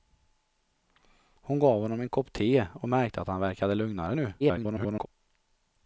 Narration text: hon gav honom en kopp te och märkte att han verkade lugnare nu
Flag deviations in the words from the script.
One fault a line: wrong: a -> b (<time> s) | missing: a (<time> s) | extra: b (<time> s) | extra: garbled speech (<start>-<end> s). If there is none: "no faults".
extra: garbled speech (4.4-5.1 s)